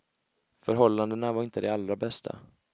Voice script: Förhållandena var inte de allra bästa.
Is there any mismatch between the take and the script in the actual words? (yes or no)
no